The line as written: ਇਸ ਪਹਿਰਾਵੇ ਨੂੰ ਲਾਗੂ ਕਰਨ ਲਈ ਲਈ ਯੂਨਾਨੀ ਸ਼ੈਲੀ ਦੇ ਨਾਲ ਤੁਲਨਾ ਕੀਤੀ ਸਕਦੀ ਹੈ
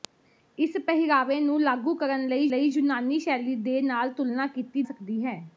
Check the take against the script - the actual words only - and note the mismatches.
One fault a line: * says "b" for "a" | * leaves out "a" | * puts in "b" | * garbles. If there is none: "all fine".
all fine